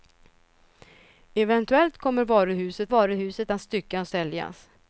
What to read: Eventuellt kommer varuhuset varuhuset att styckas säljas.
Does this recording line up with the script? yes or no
yes